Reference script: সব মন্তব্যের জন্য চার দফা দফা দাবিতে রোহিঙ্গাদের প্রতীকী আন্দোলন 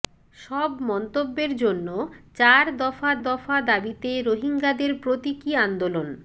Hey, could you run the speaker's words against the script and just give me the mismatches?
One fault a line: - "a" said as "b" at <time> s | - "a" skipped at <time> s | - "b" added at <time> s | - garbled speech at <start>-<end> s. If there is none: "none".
none